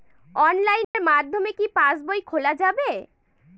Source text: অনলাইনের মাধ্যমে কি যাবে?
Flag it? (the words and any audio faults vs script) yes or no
yes